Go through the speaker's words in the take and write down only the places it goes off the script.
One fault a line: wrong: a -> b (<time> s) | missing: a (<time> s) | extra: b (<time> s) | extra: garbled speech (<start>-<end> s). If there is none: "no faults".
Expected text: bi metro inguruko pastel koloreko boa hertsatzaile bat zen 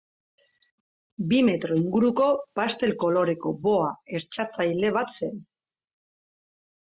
no faults